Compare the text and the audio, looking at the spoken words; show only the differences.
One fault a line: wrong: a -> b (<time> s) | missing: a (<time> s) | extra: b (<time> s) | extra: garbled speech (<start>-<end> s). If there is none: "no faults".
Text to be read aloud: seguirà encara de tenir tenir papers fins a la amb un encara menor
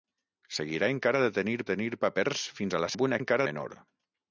no faults